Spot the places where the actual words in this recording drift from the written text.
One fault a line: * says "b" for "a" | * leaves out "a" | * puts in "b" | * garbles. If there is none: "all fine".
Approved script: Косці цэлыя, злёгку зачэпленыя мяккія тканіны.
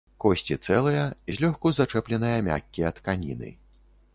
all fine